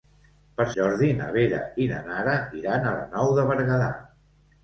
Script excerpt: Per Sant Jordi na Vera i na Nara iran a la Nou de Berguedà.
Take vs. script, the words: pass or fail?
fail